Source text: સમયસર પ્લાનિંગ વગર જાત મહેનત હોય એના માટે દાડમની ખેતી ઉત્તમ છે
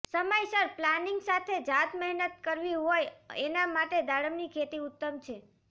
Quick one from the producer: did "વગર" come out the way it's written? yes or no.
no